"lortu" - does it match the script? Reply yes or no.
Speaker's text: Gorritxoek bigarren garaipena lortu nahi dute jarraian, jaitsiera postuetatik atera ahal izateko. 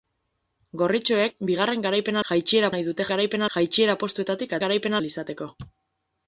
no